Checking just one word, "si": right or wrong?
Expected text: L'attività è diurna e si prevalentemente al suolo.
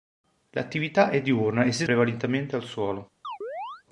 right